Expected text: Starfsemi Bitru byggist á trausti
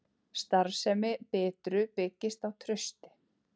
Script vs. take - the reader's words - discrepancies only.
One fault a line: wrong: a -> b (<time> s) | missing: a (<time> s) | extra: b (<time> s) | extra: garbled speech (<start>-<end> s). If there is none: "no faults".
no faults